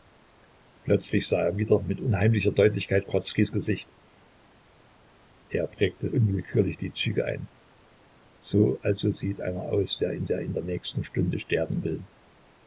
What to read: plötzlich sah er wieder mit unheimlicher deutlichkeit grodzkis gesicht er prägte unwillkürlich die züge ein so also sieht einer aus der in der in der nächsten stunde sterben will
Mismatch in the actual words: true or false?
false